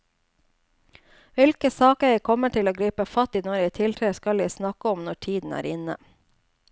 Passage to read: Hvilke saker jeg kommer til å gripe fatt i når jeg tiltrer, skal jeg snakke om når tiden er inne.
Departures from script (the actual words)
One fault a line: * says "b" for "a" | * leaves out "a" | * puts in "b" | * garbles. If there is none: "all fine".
all fine